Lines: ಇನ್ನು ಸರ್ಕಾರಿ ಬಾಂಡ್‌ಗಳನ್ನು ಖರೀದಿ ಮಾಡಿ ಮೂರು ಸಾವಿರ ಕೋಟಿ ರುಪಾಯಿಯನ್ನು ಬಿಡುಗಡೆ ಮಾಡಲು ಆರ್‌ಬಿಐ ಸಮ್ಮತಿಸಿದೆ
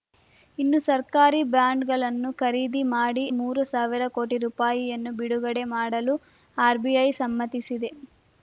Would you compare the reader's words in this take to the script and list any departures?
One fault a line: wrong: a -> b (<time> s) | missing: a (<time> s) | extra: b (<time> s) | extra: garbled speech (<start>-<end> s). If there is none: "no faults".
no faults